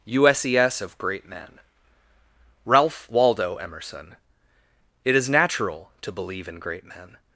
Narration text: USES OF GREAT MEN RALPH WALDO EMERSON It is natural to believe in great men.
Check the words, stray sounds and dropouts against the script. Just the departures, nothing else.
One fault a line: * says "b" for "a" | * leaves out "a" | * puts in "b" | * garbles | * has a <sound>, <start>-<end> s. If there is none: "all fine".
all fine